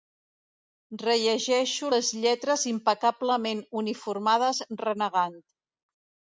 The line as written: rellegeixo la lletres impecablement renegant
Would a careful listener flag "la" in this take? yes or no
yes